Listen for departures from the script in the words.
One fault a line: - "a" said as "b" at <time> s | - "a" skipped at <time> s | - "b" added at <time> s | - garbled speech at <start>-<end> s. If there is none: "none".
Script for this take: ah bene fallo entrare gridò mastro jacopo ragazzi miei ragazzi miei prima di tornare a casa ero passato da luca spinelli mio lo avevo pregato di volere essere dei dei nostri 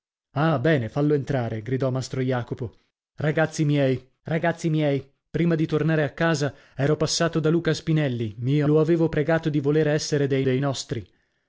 none